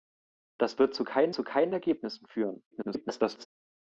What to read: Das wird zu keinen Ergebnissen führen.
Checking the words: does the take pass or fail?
fail